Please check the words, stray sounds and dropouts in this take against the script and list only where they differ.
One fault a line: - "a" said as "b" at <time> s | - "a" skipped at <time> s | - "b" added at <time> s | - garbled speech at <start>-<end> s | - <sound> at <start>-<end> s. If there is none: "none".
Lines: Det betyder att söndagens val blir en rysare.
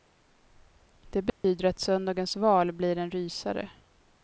- dropout at 1.3-1.4 s